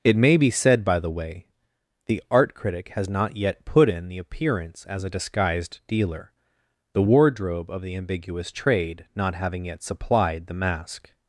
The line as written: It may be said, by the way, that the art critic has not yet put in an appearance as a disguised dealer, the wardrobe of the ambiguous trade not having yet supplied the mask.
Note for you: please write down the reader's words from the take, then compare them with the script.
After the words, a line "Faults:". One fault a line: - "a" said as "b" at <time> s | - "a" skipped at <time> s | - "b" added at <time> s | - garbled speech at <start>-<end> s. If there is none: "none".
It may be said, by the way, the art critic has not yet put in the appearance as a disguised dealer, the wardrobe of the ambiguous trade not having yet supplied the mask.
Faults:
- "that" skipped at 1.5 s
- "an" said as "the" at 4.1 s